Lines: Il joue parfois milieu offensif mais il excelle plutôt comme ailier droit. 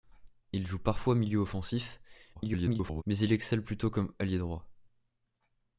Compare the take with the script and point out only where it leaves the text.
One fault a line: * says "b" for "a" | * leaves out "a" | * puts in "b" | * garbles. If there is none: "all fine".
* garbles